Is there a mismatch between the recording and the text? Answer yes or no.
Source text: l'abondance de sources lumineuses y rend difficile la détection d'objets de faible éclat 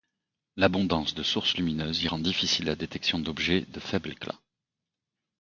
no